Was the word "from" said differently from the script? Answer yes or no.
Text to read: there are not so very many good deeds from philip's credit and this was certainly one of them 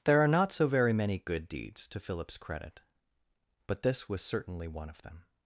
yes